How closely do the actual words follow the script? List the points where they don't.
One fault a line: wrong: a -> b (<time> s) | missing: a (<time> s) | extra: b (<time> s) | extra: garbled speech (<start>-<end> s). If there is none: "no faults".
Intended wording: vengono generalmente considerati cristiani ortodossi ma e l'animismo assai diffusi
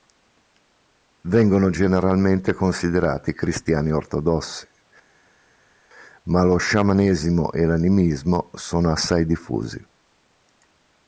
extra: lo sciamanesimo (6.4 s)
extra: sono (8.5 s)